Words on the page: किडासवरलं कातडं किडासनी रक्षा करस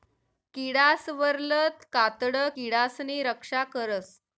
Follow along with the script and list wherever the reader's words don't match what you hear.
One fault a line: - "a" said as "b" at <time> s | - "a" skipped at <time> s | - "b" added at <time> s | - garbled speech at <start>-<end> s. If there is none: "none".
none